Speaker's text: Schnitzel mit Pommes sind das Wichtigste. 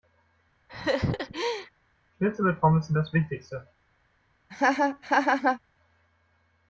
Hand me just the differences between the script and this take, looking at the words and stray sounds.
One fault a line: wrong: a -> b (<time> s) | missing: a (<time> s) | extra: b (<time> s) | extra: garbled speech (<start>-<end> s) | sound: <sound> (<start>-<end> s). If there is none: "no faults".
sound: laugh (0.7-1.7 s)
sound: laugh (4.5-5.6 s)